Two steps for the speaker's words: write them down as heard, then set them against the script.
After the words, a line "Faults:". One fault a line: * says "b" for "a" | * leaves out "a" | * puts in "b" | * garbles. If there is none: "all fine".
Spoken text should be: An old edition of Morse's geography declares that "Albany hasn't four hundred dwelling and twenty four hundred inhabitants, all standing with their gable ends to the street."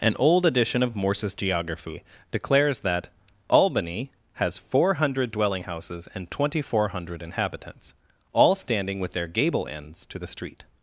An old edition of Morse's geography declares that "Albany has four hundred dwelling houses and twenty four hundred inhabitants, all standing with their gable ends to the street."
Faults:
* says "has" for "hasn't"
* puts in "houses"